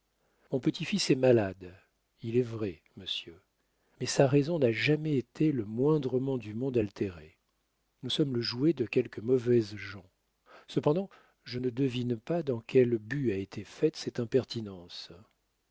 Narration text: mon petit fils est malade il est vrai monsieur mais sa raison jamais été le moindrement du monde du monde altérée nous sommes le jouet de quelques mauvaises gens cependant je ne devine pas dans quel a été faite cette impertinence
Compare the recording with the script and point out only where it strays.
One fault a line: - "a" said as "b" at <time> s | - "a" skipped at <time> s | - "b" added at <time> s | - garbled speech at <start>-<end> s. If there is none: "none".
- "n'a" added at 4.6 s
- "du monde" skipped at 6.8 s
- "but" added at 13.0 s